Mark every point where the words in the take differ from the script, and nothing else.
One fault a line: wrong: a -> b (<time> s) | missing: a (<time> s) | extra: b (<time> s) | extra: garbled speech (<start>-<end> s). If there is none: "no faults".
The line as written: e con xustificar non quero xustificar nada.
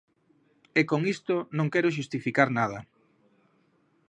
wrong: xustificar -> isto (1.1 s)